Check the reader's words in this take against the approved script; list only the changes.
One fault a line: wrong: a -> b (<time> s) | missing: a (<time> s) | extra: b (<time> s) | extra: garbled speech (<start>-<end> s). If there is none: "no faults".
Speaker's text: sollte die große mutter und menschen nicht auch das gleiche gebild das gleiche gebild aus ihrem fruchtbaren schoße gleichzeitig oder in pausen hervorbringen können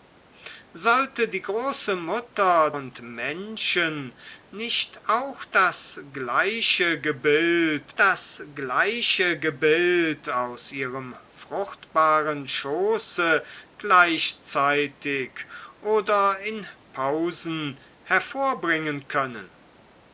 no faults